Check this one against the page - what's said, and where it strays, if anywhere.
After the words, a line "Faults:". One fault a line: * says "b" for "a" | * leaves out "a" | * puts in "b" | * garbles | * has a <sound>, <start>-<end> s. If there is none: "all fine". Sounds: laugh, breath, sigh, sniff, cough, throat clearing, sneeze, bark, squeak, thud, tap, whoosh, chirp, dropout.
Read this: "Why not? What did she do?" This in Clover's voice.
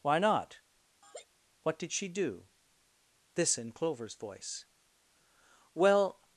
"Why not? What did she do?" This in Clover's voice. "Well
Faults:
* has a laugh, 1.0-1.3 s
* puts in "Well"